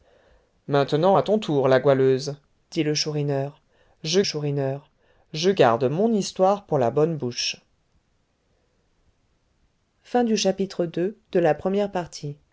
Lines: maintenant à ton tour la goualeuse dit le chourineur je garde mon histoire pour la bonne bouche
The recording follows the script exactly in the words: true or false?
false